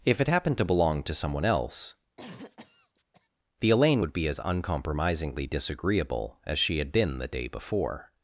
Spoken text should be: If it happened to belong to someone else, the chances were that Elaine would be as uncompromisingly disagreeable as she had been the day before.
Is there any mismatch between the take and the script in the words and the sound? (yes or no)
yes